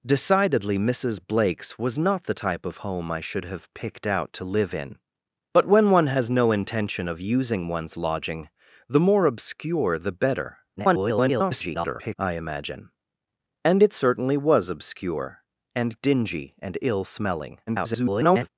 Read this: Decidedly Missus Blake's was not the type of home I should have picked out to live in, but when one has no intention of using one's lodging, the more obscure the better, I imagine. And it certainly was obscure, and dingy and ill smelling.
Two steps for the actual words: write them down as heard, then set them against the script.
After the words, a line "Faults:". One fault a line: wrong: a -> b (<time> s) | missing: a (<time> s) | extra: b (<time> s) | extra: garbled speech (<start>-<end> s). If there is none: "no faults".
Decidedly Missus Blake's was not the type of home I should have picked out to live in, but when one has no intention of using one's lodging, the more obscure the better, [garbled] I imagine. And it certainly was obscure, and dingy and ill smelling. [garbled]
Faults:
extra: garbled speech (10.8-12.2 s)
extra: garbled speech (17.7-18.5 s)